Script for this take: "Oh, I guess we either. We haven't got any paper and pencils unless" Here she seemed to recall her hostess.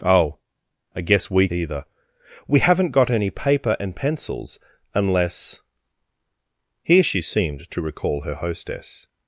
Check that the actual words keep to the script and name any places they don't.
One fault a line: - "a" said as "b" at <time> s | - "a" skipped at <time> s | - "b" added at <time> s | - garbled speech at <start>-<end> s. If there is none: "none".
none